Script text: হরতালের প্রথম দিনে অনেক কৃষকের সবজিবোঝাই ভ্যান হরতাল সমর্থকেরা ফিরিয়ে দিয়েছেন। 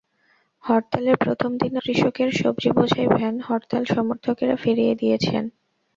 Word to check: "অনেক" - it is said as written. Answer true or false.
false